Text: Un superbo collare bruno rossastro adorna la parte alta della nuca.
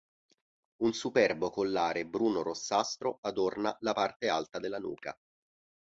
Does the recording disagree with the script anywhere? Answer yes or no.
no